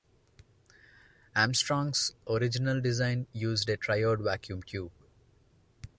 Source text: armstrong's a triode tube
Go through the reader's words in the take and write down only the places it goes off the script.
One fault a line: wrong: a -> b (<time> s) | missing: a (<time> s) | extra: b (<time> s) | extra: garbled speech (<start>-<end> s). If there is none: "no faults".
extra: original design used (2.3 s)
extra: vacuum (4.2 s)